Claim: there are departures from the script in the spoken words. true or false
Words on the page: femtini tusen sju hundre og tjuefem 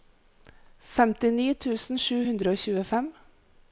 false